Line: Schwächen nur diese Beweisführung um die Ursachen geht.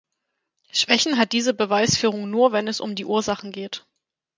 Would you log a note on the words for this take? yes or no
yes